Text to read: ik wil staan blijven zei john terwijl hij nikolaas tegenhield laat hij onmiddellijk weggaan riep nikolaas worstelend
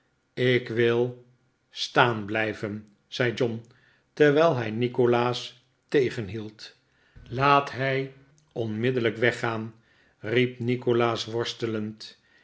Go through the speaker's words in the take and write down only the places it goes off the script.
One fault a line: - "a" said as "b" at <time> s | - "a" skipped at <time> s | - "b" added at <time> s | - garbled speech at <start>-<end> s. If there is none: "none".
none